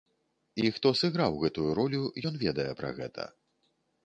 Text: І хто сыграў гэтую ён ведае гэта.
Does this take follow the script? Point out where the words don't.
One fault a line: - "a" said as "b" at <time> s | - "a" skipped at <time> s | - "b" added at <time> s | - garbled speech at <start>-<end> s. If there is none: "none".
- "ролю" added at 1.8 s
- "пра" added at 2.8 s